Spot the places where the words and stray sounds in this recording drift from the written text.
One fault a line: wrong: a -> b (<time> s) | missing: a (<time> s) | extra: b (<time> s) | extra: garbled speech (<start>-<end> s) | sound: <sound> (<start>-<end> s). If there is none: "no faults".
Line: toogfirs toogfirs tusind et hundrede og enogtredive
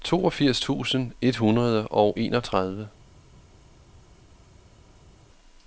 missing: toogfirs (0.6 s)